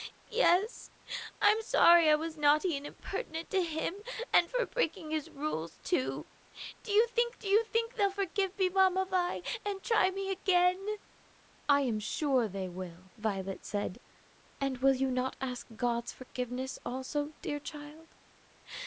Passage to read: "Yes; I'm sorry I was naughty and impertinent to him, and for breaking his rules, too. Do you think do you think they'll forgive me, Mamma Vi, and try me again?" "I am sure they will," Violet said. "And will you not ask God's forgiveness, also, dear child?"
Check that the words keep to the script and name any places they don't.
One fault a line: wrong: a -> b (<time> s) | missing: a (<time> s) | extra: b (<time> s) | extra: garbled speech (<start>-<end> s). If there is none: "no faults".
no faults